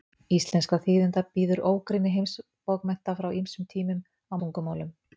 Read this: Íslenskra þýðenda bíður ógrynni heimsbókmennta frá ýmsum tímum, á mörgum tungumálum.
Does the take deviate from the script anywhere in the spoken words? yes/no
yes